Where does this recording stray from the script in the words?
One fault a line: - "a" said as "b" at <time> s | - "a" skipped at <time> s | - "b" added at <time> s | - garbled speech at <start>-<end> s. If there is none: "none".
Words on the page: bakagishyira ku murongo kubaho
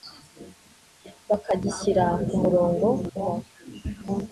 none